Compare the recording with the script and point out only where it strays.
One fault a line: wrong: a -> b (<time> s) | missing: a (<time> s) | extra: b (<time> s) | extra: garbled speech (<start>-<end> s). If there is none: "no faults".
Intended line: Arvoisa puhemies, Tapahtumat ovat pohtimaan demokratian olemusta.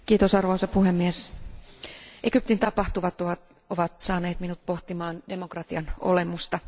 extra: Egyptin (2.2 s)
extra: saaneet minut (4.0 s)